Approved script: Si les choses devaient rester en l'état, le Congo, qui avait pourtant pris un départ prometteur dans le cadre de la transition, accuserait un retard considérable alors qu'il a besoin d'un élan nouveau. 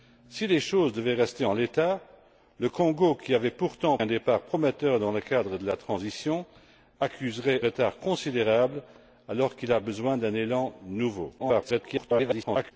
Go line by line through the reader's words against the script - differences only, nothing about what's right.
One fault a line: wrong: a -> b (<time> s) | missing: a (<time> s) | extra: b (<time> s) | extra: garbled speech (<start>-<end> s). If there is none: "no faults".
missing: pris (4.0 s)
missing: un (7.6 s)
extra: garbled speech (11.4-12.7 s)